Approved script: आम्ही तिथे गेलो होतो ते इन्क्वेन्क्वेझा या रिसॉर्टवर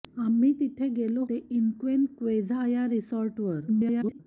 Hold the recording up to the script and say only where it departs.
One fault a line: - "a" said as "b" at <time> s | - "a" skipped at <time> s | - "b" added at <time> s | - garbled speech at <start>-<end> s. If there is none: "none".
- "होतो" skipped at 1.2 s
- garbled speech at 3.7-4.2 s